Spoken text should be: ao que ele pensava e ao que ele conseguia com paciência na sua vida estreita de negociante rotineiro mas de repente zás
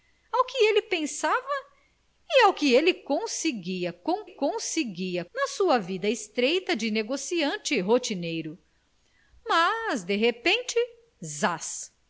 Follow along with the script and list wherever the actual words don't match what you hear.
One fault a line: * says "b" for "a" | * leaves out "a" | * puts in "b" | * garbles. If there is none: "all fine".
* says "conseguia" for "paciência"